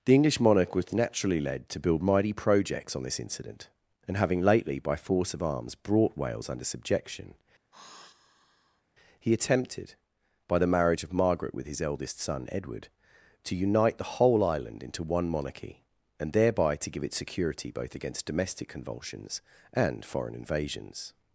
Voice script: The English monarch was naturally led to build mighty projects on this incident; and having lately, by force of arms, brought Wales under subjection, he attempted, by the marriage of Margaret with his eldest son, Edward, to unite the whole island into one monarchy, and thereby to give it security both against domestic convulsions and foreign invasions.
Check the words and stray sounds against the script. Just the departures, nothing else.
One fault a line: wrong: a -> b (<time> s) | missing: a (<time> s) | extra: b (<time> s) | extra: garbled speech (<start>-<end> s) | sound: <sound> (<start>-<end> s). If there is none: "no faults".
sound: sigh (7.7-8.8 s)